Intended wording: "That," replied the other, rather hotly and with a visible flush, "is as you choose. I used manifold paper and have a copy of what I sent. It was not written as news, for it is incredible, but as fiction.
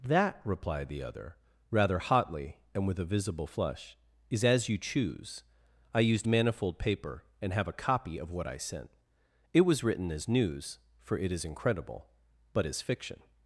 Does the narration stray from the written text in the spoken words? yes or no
yes